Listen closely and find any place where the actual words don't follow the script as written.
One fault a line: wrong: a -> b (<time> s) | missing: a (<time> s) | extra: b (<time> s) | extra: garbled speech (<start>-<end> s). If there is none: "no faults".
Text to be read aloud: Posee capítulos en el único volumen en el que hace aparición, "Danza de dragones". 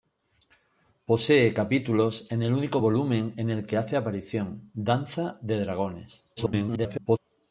extra: garbled speech (6.4-7.2 s)